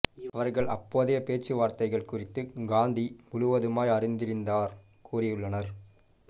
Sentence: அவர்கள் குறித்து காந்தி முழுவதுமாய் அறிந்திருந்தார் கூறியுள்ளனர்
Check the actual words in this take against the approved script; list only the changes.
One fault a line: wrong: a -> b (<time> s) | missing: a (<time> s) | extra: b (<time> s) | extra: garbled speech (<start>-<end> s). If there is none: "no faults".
extra: அப்போதைய பேச்சுவார்த்தைகள் (0.7 s)